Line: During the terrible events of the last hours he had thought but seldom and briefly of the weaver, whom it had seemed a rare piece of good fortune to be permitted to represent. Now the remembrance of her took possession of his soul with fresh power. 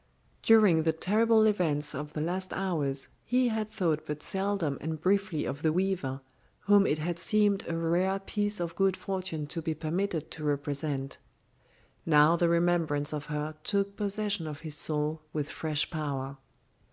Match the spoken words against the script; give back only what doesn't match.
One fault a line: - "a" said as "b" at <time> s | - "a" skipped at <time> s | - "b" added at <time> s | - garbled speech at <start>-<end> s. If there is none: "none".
none